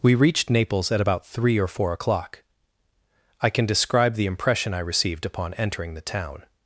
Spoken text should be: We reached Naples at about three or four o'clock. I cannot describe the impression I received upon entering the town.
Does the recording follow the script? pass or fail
fail